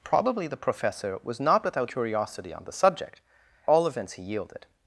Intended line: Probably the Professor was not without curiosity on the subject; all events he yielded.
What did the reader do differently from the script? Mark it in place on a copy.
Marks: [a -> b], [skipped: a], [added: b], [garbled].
Probably the Professor was not without curiosity on the subject; all events he yielded.